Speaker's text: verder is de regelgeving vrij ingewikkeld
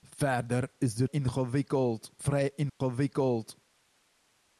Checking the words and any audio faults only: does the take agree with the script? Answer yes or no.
no